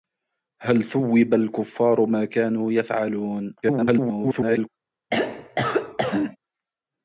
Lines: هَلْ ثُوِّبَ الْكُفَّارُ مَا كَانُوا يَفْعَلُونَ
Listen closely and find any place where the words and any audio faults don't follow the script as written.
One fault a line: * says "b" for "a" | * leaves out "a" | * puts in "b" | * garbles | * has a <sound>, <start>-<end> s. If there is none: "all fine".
* garbles
* has a throat clearing, 5.1-6.4 s